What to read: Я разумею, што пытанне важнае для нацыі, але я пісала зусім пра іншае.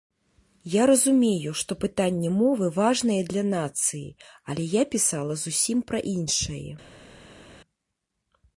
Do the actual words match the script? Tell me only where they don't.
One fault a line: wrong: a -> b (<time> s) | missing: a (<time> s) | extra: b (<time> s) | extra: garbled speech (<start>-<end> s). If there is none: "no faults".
extra: мовы (2.4 s)